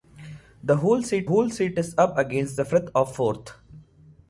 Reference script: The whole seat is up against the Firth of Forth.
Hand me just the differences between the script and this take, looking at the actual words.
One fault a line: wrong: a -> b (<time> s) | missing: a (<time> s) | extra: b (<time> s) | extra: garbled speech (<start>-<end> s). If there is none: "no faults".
extra: whole seat (1.2 s)